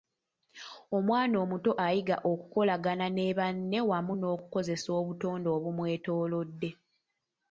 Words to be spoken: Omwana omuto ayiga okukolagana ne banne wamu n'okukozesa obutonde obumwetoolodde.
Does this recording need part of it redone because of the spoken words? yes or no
no